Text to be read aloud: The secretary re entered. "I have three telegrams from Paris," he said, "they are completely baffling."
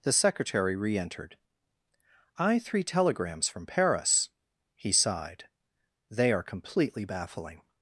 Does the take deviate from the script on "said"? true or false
true